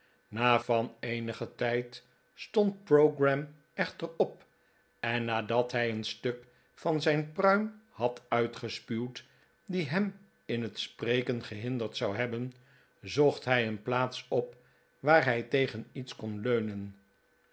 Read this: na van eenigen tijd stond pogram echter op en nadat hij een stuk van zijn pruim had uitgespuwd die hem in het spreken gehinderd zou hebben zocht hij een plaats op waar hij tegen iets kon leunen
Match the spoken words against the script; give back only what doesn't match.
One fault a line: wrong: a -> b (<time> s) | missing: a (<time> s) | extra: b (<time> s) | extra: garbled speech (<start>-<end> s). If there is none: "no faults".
no faults